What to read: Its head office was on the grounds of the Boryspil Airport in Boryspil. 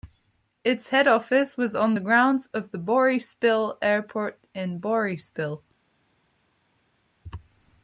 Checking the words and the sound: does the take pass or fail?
pass